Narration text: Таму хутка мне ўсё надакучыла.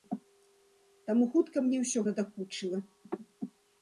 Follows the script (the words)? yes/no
yes